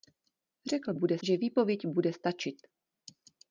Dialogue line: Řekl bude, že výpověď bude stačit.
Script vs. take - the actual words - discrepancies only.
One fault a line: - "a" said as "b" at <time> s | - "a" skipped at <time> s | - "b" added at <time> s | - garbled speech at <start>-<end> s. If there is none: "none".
none